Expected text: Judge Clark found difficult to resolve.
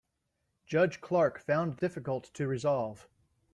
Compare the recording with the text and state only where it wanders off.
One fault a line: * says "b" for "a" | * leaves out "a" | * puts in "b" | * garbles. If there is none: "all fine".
all fine